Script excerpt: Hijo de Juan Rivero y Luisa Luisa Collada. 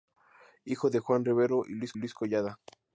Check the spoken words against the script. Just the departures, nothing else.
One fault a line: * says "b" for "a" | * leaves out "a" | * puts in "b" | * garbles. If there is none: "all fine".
all fine